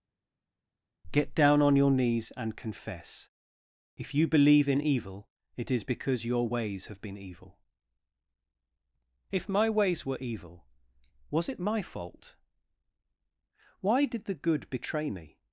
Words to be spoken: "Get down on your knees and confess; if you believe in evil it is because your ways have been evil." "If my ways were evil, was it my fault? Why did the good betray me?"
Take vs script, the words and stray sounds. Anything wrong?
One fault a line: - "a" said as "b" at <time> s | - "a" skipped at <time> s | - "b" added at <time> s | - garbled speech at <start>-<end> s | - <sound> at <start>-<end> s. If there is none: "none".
none